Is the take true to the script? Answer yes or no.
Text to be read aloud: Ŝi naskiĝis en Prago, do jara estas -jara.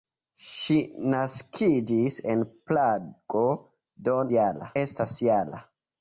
yes